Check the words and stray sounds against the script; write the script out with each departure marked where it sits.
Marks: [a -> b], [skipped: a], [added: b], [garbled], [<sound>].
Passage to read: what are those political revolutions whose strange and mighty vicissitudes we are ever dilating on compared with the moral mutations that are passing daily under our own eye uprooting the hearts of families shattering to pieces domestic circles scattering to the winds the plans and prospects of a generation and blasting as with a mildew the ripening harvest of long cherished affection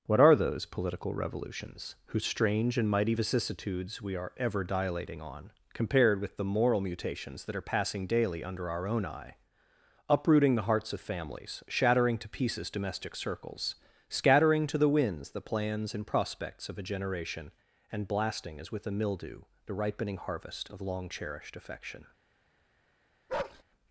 what are those political revolutions whose strange and mighty vicissitudes we are ever dilating on compared with the moral mutations that are passing daily under our own eye uprooting the hearts of families shattering to pieces domestic circles scattering to the winds the plans and prospects of a generation and blasting as with a mildew the ripening harvest of long cherished affection [bark]